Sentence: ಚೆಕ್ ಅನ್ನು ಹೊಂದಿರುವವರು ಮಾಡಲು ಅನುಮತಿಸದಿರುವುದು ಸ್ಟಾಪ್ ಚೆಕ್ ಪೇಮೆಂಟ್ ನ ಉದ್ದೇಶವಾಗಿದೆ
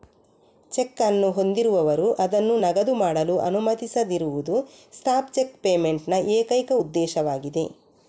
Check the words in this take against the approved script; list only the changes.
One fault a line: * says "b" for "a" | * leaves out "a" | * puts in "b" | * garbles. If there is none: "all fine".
* puts in "ಅದನ್ನು ನಗದು"
* puts in "ಏಕೈಕ"